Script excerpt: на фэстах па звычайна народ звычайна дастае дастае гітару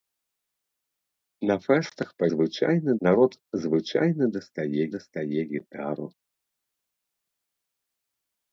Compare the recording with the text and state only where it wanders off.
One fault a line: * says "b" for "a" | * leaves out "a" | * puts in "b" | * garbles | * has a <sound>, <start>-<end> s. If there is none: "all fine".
all fine